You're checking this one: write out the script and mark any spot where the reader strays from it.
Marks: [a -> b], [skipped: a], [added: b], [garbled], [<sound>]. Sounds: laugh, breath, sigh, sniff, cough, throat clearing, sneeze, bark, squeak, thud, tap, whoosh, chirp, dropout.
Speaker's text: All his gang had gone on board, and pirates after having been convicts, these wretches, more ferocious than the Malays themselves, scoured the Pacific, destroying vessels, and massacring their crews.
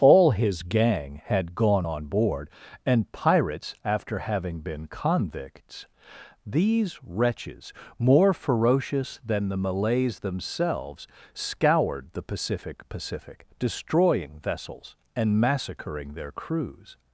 All his gang had gone on board, and pirates after having been convicts, these wretches, more ferocious than the Malays themselves, scoured the Pacific, [added: Pacific] destroying vessels, and massacring their crews.